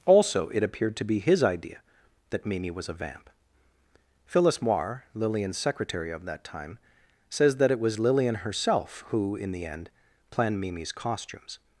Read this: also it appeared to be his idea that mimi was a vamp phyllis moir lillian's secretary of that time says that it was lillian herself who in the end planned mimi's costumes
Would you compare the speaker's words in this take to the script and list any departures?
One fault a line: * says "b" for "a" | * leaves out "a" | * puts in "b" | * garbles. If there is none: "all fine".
all fine